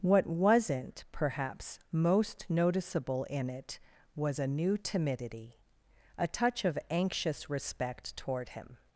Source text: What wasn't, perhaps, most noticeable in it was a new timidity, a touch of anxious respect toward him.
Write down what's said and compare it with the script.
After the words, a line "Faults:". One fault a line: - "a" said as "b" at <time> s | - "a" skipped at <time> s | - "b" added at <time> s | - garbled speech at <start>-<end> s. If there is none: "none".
What wasn't, perhaps, most noticeable in it was a new timidity, a touch of anxious respect toward him.
Faults:
none